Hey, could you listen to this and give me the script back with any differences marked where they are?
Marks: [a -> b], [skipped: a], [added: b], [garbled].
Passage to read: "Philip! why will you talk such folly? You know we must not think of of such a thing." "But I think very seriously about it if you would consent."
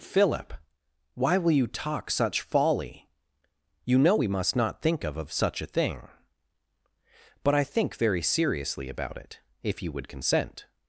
"Philip! why will you talk such folly? You know we must not think of of such a thing." "But I think very seriously about it if you would consent."